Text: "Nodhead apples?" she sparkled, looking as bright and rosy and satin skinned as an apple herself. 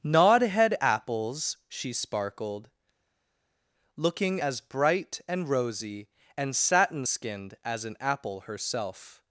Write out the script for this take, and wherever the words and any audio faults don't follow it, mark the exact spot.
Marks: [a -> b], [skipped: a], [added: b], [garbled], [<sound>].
"Nodhead apples?" she sparkled, looking as bright and rosy and satin skinned as an apple herself.